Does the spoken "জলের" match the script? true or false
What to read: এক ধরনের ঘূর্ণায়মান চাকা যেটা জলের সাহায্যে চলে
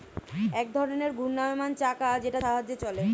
false